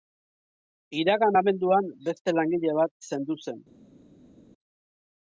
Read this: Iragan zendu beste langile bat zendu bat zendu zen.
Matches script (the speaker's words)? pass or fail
fail